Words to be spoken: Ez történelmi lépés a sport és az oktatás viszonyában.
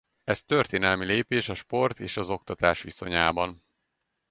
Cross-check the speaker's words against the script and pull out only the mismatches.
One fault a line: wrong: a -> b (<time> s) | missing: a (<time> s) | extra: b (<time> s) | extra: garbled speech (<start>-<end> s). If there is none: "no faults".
no faults